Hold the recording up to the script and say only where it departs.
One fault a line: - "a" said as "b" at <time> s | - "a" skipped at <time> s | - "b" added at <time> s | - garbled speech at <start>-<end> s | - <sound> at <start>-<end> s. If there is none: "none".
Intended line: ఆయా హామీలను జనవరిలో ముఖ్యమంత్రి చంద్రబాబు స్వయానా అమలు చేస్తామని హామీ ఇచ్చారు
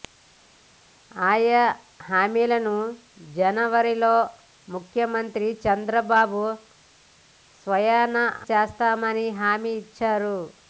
- "అమలు" skipped at 8.2 s